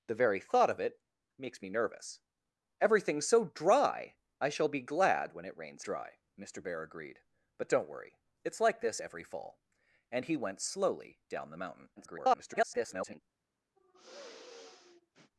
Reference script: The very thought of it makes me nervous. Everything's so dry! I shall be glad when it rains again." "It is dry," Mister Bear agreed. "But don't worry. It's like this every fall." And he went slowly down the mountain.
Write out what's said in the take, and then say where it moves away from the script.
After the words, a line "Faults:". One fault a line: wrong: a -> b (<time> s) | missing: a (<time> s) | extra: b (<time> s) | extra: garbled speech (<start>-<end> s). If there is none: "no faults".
The very thought of it makes me nervous. Everything's so dry! I shall be glad when it rains dry," Mister Bear agreed. "But don't worry. It's like this every fall." And he went slowly down the mountain. [garbled]
Faults:
missing: again It is (5.8 s)
extra: garbled speech (12.0-13.2 s)